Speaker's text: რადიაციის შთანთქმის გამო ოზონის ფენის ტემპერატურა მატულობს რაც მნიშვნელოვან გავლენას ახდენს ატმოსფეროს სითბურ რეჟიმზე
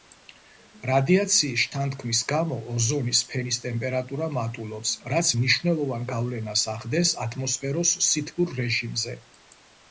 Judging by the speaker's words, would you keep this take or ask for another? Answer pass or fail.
pass